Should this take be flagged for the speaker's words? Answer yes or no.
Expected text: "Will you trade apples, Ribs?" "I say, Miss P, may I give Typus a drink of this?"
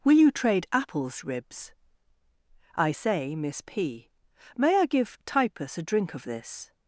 no